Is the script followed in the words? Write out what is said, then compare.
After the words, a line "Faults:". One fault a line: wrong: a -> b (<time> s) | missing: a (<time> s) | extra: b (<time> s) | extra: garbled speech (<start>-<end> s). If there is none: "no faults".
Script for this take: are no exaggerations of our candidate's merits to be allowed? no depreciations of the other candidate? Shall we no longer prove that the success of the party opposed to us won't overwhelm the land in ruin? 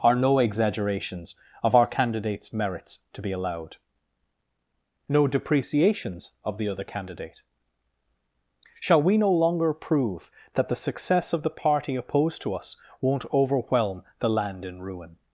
are no exaggerations of our candidate's merits to be allowed? no depreciations of the other candidate? Shall we no longer prove that the success of the party opposed to us won't overwhelm the land in ruin?
Faults:
no faults